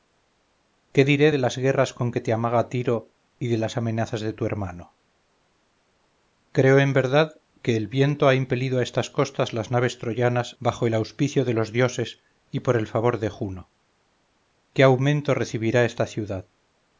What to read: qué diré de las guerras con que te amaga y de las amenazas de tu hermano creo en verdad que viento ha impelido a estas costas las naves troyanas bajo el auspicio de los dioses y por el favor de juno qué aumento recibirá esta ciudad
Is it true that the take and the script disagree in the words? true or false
true